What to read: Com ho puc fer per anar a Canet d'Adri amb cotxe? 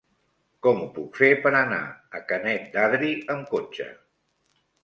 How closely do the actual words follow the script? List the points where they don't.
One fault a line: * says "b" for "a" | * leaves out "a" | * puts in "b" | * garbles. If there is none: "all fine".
all fine